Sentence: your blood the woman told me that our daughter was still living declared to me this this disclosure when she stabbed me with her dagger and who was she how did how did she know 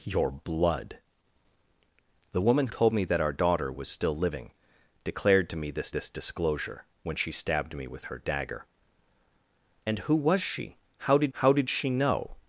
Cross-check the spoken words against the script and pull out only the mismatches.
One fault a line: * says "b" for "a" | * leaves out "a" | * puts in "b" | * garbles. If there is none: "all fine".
all fine